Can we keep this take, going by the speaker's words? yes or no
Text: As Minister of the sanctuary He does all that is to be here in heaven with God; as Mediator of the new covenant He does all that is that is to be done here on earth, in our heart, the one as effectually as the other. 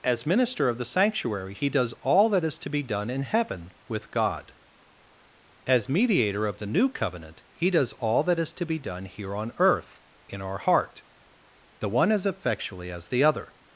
no